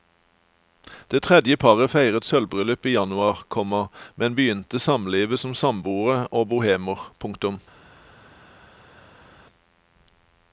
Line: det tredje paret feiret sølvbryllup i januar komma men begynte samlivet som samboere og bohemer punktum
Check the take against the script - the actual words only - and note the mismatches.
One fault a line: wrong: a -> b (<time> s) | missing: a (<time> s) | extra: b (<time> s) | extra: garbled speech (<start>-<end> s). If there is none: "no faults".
no faults